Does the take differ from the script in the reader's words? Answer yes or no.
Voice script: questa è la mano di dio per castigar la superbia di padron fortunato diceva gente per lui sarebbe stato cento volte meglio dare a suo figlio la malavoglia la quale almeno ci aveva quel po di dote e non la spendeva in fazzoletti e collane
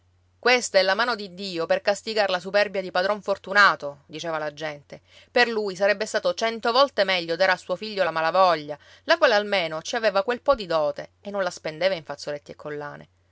yes